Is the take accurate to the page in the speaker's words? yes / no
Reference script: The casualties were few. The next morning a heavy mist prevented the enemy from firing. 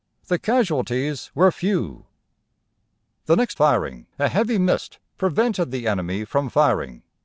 no